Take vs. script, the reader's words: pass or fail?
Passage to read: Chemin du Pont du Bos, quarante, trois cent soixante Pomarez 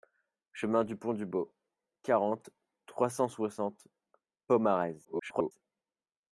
fail